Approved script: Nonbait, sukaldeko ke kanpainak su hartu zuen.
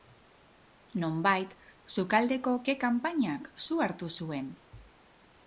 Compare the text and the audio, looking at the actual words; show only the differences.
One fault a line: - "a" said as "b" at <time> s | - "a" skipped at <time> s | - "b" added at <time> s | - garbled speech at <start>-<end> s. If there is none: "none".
none